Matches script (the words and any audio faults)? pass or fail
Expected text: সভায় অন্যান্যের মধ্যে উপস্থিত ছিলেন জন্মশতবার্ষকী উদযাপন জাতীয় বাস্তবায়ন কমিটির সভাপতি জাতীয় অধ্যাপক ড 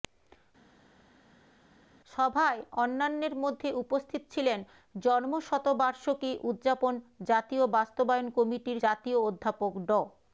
fail